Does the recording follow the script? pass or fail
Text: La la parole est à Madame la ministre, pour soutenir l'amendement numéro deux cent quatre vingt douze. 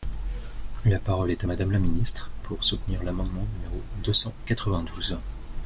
fail